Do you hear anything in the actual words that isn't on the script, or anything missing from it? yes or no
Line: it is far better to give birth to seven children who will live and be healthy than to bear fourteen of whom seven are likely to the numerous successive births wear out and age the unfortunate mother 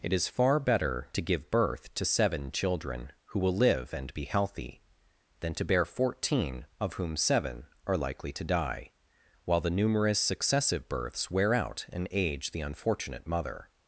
yes